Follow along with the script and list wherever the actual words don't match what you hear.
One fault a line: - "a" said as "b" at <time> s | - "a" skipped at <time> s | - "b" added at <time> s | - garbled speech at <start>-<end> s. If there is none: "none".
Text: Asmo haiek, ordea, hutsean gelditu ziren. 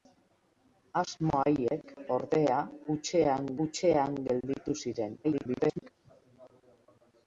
- "hutsean" added at 3.7 s
- garbled speech at 5.2-5.9 s